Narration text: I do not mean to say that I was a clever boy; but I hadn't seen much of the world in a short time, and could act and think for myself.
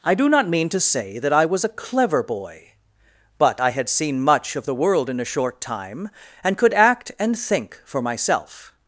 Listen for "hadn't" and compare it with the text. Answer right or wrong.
wrong